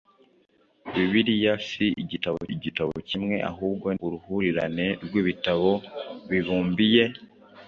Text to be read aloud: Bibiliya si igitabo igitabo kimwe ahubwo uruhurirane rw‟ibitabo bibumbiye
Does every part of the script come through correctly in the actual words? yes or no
yes